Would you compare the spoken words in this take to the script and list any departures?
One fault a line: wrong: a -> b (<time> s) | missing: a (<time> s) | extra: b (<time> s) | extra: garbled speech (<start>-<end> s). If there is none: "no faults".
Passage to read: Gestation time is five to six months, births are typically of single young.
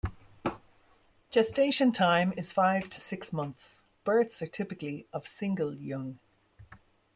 no faults